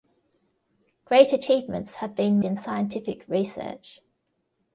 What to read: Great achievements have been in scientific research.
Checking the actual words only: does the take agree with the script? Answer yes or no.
yes